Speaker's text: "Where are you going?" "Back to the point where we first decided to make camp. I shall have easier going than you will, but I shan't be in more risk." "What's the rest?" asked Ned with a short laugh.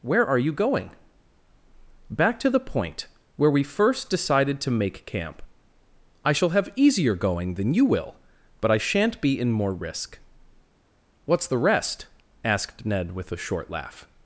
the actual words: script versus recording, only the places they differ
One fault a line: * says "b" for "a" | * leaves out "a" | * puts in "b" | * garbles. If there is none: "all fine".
all fine